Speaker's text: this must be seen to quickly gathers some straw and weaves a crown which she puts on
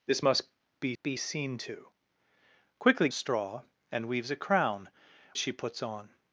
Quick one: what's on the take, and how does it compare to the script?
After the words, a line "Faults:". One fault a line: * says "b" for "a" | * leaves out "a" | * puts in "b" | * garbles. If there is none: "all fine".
this must be be seen to quickly straw and weaves a crown she puts on
Faults:
* puts in "be"
* leaves out "gathers some"
* leaves out "which"